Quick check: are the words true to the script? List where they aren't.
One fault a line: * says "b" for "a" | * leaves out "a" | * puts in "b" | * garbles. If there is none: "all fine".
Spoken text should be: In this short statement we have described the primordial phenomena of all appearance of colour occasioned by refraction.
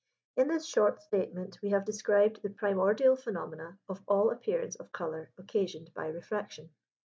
all fine